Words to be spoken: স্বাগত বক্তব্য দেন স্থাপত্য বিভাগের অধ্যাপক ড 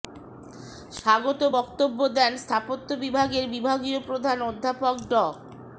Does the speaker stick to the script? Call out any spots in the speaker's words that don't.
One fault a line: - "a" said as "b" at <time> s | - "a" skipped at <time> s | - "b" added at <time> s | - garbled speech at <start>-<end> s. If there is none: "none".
- "বিভাগীয় প্রধান" added at 3.5 s